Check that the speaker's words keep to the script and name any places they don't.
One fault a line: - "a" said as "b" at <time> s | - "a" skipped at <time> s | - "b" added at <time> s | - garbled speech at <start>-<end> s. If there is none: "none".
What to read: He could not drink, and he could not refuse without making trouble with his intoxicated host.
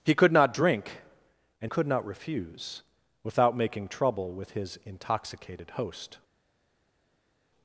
- "he" skipped at 1.7 s